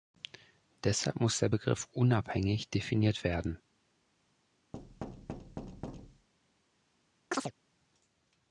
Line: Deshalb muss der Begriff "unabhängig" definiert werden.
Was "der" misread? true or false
false